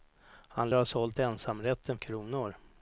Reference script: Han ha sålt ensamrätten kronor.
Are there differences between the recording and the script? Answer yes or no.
no